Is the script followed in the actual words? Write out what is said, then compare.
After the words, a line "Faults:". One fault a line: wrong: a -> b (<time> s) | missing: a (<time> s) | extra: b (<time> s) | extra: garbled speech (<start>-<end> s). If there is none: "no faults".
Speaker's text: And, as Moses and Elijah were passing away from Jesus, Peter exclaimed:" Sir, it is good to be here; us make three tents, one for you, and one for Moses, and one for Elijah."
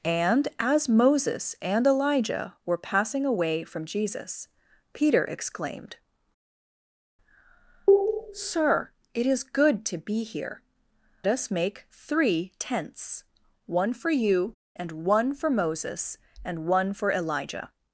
And, as Moses and Elijah were passing away from Jesus, Peter exclaimed:" Sir, it is good to be here; us make three tents, one for you, and one for Moses, and one for Elijah."
Faults:
no faults